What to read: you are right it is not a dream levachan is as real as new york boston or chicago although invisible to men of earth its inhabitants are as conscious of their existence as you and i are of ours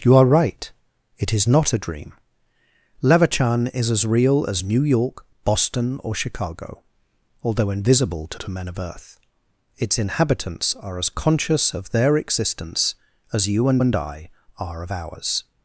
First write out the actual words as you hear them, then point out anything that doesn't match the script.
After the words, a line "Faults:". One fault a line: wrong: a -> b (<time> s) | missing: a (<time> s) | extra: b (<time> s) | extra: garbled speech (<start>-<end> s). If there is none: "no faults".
you are right it is not a dream levachan is as real as new york boston or chicago although invisible to to men of earth its inhabitants are as conscious of their existence as you and and i are of ours
Faults:
extra: to (8.4 s)
extra: and (13.8 s)